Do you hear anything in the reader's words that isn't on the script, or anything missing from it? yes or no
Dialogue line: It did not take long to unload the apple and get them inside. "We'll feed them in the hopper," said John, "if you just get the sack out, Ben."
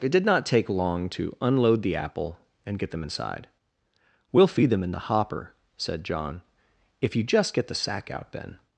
no